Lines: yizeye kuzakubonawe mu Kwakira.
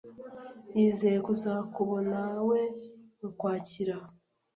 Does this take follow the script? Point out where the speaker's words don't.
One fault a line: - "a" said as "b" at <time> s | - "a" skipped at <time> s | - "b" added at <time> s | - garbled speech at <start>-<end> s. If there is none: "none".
none